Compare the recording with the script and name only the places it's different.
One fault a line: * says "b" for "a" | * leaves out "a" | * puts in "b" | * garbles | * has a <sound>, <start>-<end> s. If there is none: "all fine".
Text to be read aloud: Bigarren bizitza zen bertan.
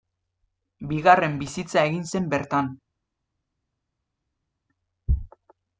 * puts in "egin"